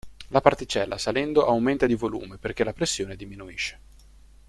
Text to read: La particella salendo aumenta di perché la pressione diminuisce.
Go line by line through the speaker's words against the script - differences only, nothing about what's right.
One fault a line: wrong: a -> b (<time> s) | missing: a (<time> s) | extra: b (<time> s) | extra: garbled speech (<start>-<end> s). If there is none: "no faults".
extra: volume (1.9 s)